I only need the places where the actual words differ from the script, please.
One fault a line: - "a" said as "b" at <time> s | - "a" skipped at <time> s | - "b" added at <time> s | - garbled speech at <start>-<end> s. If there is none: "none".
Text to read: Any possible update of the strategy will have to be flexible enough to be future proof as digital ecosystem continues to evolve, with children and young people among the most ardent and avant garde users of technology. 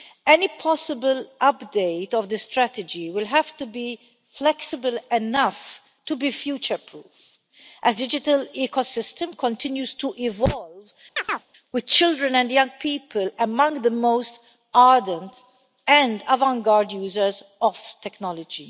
none